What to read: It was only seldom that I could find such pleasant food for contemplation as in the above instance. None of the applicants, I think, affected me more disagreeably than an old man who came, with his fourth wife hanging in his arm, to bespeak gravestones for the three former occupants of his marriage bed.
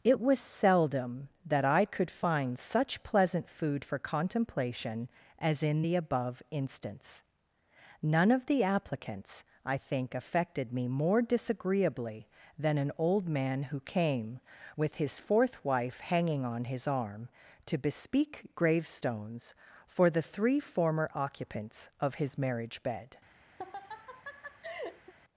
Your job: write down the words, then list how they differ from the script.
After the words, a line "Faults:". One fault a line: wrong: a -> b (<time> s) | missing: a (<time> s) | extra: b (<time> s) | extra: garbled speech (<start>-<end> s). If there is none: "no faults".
It was seldom that I could find such pleasant food for contemplation as in the above instance. None of the applicants, I think, affected me more disagreeably than an old man who came, with his fourth wife hanging on his arm, to bespeak gravestones for the three former occupants of his marriage bed.
Faults:
missing: only (0.4 s)
wrong: in -> on (16.5 s)